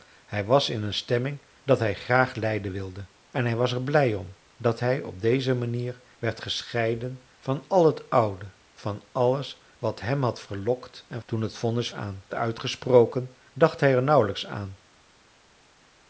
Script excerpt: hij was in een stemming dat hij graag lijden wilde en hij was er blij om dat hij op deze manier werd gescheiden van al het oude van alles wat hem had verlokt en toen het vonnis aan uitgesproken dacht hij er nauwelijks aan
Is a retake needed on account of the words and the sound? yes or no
no